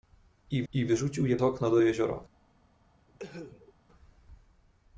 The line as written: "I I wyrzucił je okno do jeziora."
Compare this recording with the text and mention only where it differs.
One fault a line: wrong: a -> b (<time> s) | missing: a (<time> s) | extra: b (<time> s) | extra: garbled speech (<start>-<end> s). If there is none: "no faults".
no faults